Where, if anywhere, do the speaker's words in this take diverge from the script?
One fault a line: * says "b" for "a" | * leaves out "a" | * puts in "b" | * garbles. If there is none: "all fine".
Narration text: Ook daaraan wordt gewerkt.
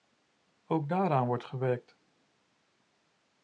all fine